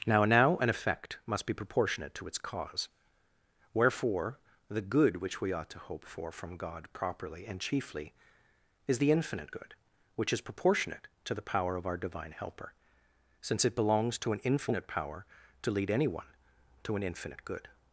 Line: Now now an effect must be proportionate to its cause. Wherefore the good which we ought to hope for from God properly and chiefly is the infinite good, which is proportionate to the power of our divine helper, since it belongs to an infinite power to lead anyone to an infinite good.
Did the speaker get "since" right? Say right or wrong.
right